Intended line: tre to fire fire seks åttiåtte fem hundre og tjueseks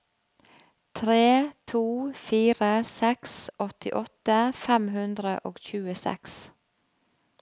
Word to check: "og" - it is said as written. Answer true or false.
true